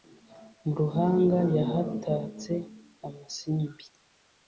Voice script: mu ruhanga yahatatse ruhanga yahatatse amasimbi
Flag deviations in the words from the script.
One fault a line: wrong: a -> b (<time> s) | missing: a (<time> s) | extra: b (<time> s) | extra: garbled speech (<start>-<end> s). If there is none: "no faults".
missing: ruhanga yahatatse (2.5 s)